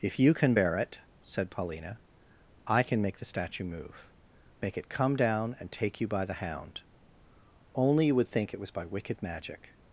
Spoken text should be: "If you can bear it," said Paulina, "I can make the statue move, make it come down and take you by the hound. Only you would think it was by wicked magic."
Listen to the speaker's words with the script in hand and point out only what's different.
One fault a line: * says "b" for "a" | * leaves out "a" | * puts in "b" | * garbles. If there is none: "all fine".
all fine